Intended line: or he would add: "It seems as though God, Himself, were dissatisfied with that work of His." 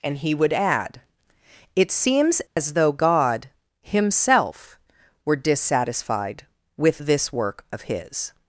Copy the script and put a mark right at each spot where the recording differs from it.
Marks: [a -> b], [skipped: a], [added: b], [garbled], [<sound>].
[or -> and] he would add: "It seems as [dropout] though God, Himself, were dissatisfied with [that -> this] work of His."